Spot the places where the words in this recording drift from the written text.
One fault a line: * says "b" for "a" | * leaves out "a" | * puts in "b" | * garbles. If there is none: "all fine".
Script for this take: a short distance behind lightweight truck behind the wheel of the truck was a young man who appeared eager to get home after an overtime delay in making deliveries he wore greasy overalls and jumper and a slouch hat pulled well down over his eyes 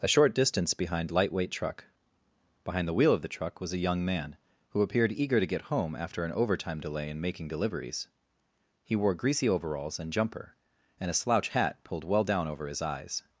all fine